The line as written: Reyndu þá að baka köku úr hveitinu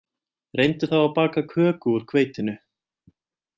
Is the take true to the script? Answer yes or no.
yes